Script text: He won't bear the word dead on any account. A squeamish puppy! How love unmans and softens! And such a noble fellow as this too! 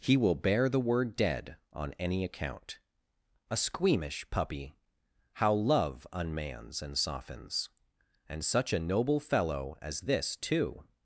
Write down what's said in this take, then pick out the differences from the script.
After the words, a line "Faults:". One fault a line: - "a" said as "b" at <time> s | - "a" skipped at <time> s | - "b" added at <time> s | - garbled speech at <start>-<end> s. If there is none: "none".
He will bear the word dead on any account. A squeamish puppy! How love unmans and softens! And such a noble fellow as this too!
Faults:
- "won't" said as "will" at 0.2 s